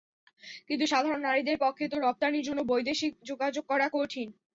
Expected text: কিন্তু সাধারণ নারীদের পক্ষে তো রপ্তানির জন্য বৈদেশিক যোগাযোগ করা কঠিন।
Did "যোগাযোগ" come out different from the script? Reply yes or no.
no